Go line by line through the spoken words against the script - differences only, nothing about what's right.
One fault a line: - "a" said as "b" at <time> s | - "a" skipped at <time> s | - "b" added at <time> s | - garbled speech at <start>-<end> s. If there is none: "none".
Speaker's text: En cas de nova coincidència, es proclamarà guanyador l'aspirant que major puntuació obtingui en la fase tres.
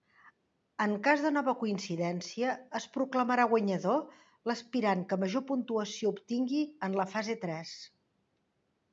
none